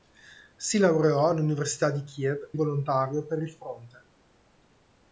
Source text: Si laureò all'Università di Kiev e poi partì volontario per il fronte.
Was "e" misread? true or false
true